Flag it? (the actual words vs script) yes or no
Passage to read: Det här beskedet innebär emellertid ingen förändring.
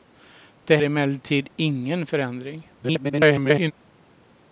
yes